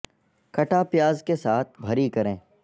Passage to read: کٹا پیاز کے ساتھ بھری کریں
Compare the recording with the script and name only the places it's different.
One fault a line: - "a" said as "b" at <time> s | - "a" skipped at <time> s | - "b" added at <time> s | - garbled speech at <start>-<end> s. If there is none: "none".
none